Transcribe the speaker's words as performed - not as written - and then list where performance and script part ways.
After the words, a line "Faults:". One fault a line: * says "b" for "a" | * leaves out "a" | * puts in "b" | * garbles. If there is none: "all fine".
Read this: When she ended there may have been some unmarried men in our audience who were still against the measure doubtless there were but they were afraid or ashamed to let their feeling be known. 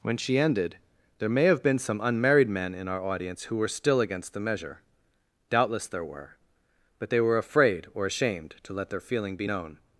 When she ended there may have been some unmarried men in our audience who were still against the measure doubtless there were but they were afraid or ashamed to let their feeling be known.
Faults:
all fine